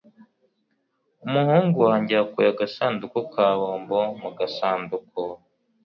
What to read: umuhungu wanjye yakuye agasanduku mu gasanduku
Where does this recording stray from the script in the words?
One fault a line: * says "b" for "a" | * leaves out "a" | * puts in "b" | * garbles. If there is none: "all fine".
* puts in "ka bombo"